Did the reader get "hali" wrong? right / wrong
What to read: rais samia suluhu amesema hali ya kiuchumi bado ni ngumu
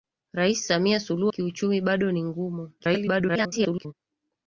wrong